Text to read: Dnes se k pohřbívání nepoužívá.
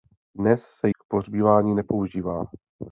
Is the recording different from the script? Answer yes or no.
no